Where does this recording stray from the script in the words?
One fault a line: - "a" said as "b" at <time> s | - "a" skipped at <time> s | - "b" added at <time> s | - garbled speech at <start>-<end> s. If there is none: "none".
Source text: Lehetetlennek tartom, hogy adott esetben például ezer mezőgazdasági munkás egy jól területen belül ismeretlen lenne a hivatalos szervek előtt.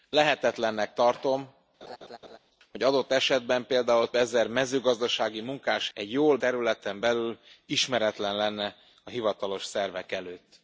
none